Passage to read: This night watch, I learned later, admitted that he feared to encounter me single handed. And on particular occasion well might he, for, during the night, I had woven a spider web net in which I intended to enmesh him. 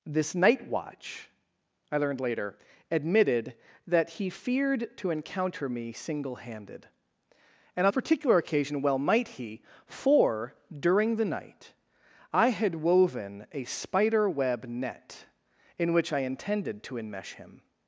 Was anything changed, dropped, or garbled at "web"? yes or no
no